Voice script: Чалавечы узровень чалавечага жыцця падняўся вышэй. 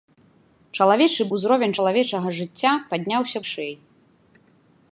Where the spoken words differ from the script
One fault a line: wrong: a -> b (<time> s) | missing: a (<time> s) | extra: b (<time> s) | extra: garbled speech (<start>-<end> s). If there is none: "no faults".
no faults